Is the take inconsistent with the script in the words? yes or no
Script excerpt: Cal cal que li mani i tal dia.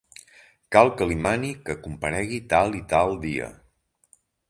yes